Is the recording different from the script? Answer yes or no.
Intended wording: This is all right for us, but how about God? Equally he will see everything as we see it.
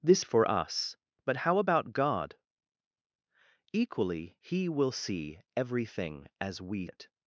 yes